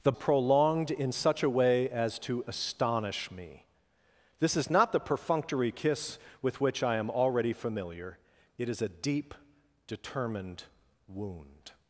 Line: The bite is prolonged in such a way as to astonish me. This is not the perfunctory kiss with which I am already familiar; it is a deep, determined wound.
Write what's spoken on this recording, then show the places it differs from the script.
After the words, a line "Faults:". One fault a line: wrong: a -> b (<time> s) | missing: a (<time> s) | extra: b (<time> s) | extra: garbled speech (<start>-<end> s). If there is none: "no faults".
The prolonged in such a way as to astonish me. This is not the perfunctory kiss with which I am already familiar; it is a deep, determined wound.
Faults:
missing: bite is (0.1 s)